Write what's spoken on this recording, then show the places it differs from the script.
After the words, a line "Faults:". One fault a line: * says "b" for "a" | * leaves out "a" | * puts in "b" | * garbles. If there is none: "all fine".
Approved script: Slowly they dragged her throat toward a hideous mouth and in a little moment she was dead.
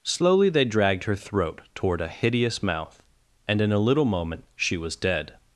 Slowly they dragged her throat toward a hideous mouth and in a little moment she was dead.
Faults:
all fine